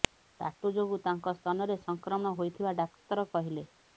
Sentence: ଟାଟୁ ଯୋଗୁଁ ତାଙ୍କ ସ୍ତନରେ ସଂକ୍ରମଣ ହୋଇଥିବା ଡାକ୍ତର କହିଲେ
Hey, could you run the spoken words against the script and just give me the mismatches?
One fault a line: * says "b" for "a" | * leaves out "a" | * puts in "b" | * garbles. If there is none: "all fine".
all fine